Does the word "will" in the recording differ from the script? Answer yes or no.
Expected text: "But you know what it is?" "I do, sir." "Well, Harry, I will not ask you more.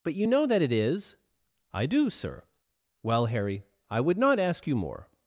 yes